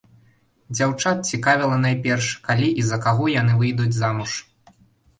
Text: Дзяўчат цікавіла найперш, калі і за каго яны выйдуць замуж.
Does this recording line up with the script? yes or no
yes